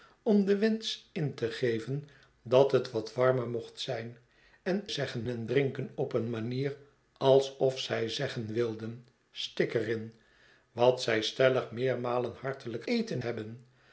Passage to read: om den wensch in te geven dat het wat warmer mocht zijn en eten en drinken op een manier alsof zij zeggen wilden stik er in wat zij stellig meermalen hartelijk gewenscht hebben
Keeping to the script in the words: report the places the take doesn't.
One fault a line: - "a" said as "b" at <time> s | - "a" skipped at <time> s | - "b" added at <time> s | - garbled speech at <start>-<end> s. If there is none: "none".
- "eten" said as "zeggen" at 4.9 s
- "gewenscht" said as "eten" at 12.8 s